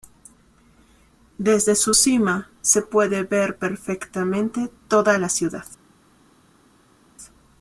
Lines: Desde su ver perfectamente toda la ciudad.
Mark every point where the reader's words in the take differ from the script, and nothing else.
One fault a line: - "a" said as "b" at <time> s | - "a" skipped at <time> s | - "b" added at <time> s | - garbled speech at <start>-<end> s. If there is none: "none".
- "cima se puede" added at 1.9 s